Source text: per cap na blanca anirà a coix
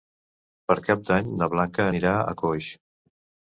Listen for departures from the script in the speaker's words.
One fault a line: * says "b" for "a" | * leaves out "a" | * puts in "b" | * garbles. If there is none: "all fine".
* puts in "d'any"